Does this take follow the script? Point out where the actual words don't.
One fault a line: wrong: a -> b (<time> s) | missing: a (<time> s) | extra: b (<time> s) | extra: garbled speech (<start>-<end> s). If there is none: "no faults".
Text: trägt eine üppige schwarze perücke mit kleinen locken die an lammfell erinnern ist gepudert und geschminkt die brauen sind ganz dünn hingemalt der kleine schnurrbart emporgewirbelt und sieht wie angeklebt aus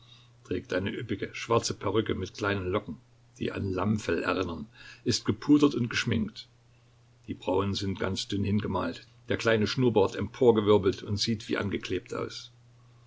no faults